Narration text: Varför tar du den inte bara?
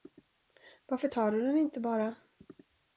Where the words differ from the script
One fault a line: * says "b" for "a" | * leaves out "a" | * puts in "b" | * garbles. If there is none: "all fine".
all fine